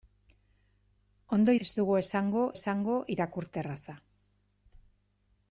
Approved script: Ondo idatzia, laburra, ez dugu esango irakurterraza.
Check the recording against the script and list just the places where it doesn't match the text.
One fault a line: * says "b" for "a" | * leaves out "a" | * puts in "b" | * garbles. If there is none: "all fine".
* leaves out "idatzia laburra"
* puts in "esango"